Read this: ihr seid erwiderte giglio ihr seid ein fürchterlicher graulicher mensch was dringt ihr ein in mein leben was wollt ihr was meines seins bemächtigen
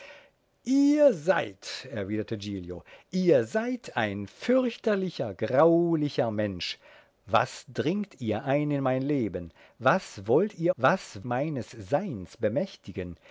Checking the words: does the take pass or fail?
pass